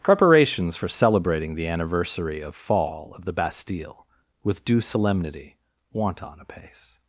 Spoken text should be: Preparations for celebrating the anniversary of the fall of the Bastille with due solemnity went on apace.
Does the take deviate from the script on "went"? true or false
true